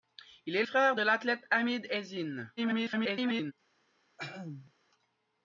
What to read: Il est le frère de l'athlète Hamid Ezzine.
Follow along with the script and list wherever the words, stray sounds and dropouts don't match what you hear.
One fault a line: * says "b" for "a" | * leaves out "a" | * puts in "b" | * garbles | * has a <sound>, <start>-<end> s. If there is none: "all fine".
* leaves out "le"
* garbles
* has a throat clearing, 4.2-4.7 s